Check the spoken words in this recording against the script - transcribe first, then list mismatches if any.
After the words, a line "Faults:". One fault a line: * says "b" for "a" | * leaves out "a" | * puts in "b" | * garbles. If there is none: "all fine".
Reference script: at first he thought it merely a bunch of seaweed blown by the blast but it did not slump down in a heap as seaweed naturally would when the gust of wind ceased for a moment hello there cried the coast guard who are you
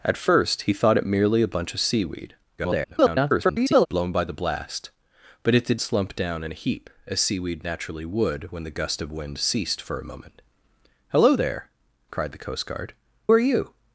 at first he thought it merely a bunch of seaweed [garbled] blown by the blast but it did slump down in a heap as seaweed naturally would when the gust of wind ceased for a moment hello there cried the coast guard are you
Faults:
* garbles
* leaves out "not"
* leaves out "who"